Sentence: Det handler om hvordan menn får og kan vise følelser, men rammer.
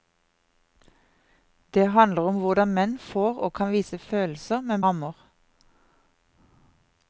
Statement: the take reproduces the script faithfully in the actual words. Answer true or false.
true